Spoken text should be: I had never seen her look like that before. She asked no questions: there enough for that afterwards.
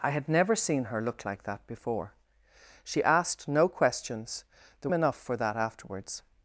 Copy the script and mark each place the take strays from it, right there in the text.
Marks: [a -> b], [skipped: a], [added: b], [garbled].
I had never seen her look like that before. She asked no questions: there enough for that afterwards.